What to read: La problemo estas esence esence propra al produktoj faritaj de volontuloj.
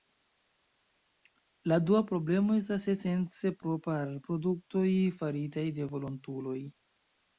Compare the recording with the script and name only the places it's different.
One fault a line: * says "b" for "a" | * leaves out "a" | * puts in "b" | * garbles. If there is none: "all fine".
* puts in "dua"
* leaves out "esence"